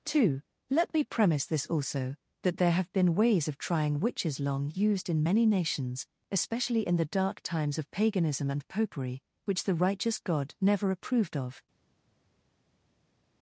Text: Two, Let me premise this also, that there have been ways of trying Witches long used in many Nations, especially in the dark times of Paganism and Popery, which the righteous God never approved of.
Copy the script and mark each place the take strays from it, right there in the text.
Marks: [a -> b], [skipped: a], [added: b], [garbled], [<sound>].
Two, Let me premise this also, that there have been ways of trying Witches long used in many Nations, especially in the dark times of Paganism and Popery, which the righteous God never approved of.